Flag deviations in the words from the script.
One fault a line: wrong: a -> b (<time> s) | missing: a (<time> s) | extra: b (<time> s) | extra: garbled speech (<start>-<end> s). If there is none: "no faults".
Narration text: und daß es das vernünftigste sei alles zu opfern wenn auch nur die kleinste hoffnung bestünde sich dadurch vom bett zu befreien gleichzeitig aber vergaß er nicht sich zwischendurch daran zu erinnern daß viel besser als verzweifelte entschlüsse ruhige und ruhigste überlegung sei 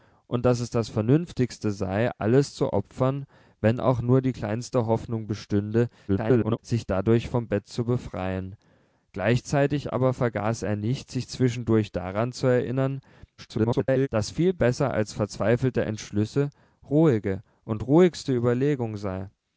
extra: garbled speech (6.1-6.6 s)
extra: garbled speech (13.4-14.1 s)